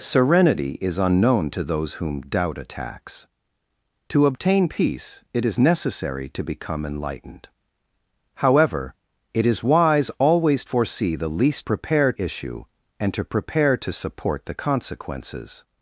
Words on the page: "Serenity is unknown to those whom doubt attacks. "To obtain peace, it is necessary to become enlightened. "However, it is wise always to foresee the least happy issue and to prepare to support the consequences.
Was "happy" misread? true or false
true